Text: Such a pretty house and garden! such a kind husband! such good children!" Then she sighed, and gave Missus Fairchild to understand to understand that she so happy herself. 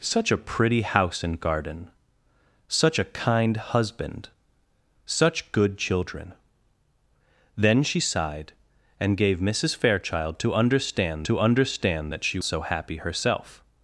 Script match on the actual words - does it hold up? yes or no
yes